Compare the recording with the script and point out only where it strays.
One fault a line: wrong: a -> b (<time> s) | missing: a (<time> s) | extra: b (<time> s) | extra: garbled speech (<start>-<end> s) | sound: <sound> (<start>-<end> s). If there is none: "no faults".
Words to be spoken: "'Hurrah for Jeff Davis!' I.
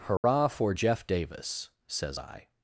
sound: dropout (0.2-0.2 s)
extra: says (1.9 s)